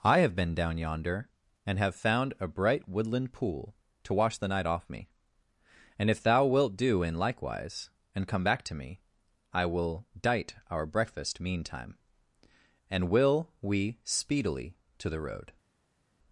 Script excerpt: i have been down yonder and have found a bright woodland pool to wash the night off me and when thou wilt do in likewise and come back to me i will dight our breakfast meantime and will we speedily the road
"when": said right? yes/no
no